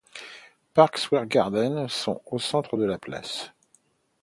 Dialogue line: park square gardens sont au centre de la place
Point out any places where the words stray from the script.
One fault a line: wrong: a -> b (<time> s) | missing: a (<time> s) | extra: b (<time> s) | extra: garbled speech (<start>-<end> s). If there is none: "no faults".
no faults